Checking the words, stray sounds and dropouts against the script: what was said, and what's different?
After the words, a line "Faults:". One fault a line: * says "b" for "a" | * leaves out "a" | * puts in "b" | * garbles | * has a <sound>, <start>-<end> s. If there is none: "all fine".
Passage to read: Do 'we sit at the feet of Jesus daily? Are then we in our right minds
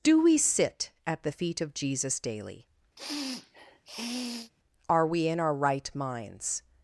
Do 'we sit at the feet of Jesus daily? Are we in our right minds
Faults:
* has a sniff, 3.0-4.5 s
* leaves out "then"